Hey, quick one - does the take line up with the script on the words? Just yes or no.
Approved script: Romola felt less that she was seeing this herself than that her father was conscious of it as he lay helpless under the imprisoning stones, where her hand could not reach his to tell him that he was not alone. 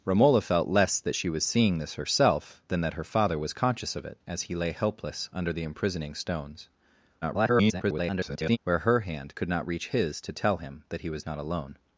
no